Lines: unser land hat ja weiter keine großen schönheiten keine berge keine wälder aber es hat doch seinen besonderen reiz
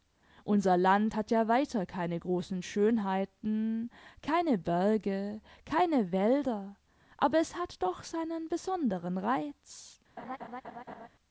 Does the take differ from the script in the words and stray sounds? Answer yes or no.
yes